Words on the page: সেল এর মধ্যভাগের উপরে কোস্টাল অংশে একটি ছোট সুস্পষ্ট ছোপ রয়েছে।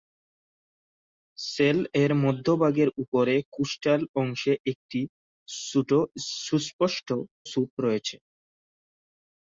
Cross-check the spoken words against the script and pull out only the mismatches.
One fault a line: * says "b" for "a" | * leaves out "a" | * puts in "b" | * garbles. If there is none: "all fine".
all fine